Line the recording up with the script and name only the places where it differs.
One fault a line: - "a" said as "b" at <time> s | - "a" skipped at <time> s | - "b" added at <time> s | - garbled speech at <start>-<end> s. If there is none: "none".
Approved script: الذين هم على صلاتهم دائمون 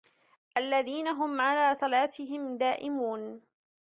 none